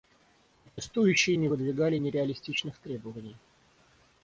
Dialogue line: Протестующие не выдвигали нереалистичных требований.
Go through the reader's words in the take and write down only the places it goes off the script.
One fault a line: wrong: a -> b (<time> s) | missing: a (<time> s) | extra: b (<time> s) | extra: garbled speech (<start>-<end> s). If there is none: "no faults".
no faults